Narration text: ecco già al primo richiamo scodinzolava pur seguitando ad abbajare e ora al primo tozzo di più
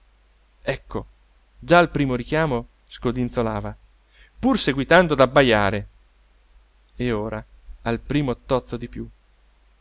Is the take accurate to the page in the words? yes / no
yes